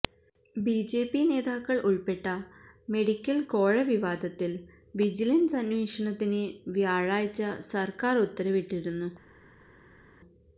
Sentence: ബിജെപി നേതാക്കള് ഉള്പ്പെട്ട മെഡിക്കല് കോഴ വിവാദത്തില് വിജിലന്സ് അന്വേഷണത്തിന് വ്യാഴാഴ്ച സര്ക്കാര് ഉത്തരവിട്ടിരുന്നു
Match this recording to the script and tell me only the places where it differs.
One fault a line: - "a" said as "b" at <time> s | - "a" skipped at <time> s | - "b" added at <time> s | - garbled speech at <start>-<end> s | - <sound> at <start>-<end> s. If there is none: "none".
none